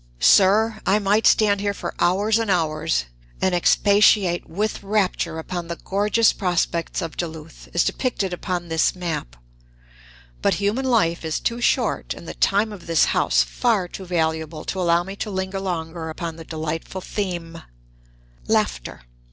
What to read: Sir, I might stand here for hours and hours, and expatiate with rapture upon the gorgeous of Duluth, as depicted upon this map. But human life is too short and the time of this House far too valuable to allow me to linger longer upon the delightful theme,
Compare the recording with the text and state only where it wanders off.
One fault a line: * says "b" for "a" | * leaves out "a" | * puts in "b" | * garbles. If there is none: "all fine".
* puts in "prospects"